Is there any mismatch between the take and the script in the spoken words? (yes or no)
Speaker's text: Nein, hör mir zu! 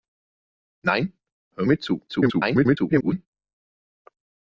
yes